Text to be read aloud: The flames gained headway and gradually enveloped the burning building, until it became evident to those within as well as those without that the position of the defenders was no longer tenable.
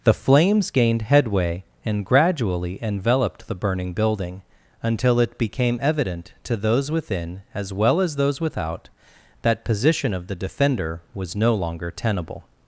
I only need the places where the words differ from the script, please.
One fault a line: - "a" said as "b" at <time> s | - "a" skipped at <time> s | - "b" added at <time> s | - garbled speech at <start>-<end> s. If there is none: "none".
- "the" skipped at 9.6 s
- "defenders" said as "defender" at 10.3 s